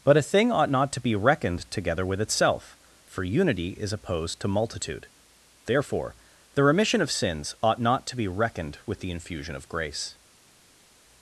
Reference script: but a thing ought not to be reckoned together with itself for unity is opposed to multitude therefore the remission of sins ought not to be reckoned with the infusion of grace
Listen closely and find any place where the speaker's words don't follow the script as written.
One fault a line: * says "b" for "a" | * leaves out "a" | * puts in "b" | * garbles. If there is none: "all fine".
all fine